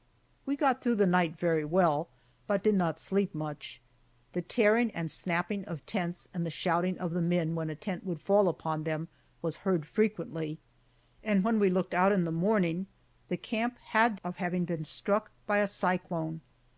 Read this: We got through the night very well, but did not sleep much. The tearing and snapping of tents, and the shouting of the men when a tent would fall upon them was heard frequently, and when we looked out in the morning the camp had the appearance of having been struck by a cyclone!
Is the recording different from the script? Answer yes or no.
yes